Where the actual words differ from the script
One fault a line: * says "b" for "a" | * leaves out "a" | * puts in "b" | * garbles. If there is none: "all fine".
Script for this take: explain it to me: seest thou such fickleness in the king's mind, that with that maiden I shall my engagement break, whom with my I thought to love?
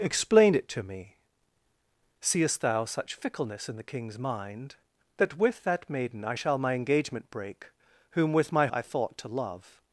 all fine